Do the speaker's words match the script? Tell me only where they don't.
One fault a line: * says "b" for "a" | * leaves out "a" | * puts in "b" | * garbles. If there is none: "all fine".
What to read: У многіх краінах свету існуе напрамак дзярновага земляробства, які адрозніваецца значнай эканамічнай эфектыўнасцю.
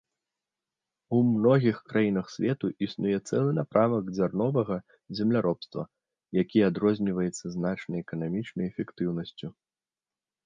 * puts in "цэлы"